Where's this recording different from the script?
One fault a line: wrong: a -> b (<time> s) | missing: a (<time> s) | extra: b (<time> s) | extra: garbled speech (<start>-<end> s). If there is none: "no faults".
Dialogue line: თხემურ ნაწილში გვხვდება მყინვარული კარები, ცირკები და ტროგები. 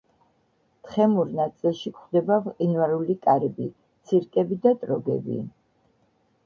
no faults